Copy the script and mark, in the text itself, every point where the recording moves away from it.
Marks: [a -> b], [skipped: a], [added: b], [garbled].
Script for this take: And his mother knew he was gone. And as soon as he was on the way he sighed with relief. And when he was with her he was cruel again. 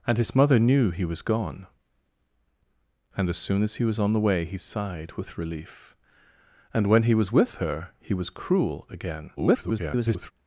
And his mother knew he was gone. And as soon as he was on the way he sighed with relief. And when he was with her he was cruel again. [garbled]